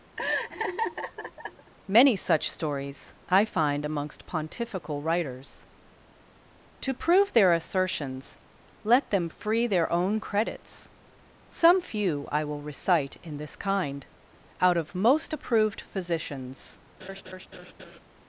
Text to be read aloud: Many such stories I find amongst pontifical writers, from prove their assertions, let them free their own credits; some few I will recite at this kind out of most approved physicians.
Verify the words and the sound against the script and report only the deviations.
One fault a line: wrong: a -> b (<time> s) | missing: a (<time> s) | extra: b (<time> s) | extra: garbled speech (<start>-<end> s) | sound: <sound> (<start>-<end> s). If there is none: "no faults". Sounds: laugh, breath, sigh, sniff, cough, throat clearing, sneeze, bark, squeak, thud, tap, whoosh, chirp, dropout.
sound: laugh (0.2-1.7 s)
wrong: from -> to (6.8 s)
wrong: at -> in (13.2 s)
sound: laugh (17.0-18.0 s)